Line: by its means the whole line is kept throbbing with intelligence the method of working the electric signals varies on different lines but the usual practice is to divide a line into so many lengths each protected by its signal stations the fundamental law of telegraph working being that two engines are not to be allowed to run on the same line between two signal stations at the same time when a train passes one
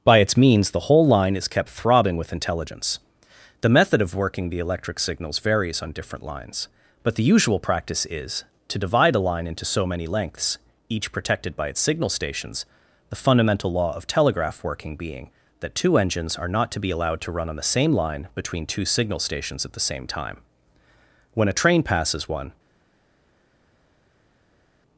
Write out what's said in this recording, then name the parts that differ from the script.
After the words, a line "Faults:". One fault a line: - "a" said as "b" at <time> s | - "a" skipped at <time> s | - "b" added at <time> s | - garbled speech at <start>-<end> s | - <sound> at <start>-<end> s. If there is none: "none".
by its means the whole line is kept throbbing with intelligence the method of working the electric signals varies on different lines but the usual practice is to divide a line into so many lengths each protected by its signal stations the fundamental law of telegraph working being that two engines are not to be allowed to run on the same line between two signal stations at the same time when a train passes one
Faults:
none